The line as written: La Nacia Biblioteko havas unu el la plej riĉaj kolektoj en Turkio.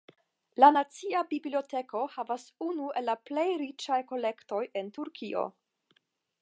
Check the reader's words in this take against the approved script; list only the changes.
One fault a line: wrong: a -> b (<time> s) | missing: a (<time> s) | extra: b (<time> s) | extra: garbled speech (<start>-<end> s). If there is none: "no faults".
no faults